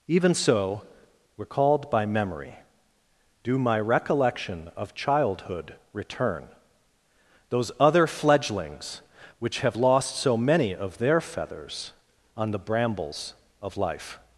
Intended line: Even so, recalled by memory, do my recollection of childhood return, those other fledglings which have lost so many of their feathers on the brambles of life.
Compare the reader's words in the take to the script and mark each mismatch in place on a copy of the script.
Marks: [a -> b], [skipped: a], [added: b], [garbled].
Even so, recalled by memory, do my recollection of childhood return, those other fledglings which have lost so many of their feathers on the brambles of life.